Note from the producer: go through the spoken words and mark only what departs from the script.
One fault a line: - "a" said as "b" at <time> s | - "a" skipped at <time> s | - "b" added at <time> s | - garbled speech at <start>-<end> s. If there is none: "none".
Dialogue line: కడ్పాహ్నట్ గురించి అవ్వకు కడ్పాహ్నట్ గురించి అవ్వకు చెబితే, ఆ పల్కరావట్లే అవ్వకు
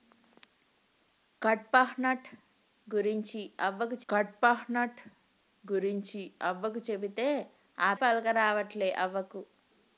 none